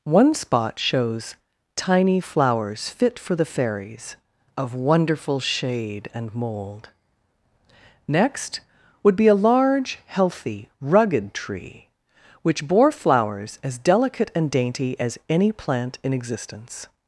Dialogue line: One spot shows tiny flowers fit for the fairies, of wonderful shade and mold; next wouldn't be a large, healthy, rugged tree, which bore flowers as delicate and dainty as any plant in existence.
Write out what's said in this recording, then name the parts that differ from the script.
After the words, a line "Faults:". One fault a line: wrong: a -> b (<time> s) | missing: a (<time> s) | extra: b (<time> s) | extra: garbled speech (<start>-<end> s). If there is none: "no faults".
One spot shows tiny flowers fit for the fairies, of wonderful shade and mold; next would be a large, healthy, rugged tree, which bore flowers as delicate and dainty as any plant in existence.
Faults:
wrong: wouldn't -> would (9.0 s)